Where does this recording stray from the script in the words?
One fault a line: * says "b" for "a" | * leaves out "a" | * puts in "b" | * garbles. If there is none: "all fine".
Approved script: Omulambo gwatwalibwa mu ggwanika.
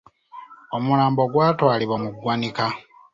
all fine